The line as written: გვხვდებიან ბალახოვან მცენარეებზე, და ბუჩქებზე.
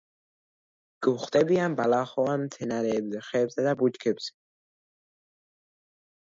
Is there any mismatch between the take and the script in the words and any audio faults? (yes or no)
yes